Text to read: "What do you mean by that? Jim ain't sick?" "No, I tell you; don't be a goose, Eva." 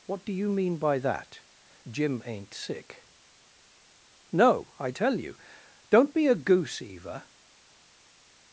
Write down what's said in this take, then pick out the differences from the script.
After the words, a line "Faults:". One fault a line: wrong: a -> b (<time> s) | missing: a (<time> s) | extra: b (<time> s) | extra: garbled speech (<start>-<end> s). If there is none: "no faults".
"What do you mean by that? Jim ain't sick?" "No, I tell you; don't be a goose, Eva."
Faults:
no faults